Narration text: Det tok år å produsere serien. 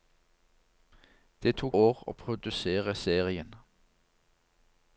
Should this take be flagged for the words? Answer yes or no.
no